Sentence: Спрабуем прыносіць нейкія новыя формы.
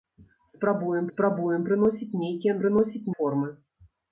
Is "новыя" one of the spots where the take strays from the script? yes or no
yes